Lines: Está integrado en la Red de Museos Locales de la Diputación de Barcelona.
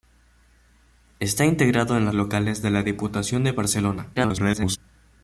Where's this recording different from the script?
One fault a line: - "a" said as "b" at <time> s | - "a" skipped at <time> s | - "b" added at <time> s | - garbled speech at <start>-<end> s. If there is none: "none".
- "Red de Museos" skipped at 2.1 s
- garbled speech at 4.2-4.8 s